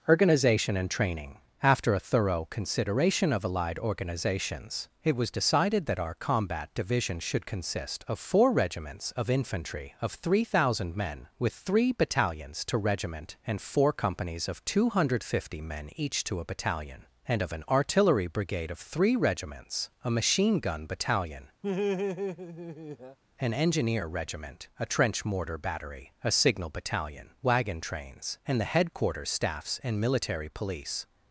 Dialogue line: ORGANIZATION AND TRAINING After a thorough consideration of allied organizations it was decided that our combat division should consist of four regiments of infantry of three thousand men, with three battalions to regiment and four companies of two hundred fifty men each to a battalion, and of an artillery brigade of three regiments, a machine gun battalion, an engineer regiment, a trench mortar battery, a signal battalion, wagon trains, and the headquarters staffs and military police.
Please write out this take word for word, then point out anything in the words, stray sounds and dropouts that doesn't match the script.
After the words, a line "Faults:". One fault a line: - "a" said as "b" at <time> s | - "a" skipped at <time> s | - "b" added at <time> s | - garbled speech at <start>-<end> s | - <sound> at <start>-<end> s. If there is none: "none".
ORGANIZATION AND TRAINING After a thorough consideration of allied organizations it was decided that our combat division should consist of four regiments of infantry of three thousand men, with three battalions to regiment and four companies of two hundred fifty men each to a battalion, and of an artillery brigade of three regiments, a machine gun battalion, an engineer regiment, a trench mortar battery, a signal battalion, wagon trains, and the headquarters staffs and military police.
Faults:
- laugh at 21.6-23.2 s